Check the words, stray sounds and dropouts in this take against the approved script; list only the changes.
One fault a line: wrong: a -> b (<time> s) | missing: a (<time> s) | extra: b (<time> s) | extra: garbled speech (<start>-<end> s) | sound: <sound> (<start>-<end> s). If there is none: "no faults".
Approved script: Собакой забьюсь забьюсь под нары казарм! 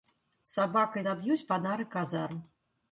missing: забьюсь (1.4 s)